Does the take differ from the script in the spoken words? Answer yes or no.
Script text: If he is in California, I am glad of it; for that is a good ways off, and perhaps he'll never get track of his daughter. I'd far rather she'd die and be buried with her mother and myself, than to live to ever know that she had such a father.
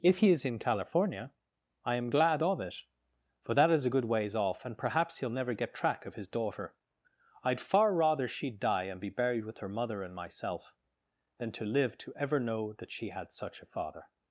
no